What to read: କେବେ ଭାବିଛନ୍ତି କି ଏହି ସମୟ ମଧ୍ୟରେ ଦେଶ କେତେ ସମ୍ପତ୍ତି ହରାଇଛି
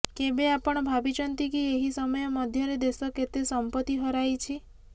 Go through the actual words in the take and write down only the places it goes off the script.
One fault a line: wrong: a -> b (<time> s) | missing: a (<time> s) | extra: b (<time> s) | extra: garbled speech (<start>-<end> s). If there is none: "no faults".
extra: ଆପଣ (0.5 s)